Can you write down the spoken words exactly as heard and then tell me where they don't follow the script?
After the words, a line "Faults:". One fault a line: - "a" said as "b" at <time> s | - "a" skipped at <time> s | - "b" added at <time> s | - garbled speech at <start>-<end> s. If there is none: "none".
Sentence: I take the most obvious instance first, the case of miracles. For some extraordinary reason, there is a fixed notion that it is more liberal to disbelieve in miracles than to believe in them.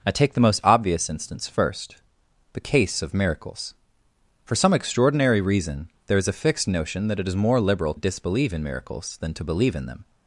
I take the most obvious instance first, the case of miracles. For some extraordinary reason, there is a fixed notion that it is more liberal disbelieve in miracles than to believe in them.
Faults:
- "to" skipped at 7.9 s